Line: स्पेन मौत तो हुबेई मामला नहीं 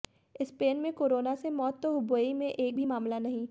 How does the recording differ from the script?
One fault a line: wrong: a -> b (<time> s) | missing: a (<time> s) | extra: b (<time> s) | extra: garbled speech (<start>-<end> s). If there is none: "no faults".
extra: में कोरोना से (0.8 s)
extra: में एक भी (2.3 s)